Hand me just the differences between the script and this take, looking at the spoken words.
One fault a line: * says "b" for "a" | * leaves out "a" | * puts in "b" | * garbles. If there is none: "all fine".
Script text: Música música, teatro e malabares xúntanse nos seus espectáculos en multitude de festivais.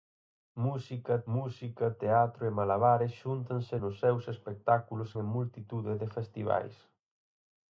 all fine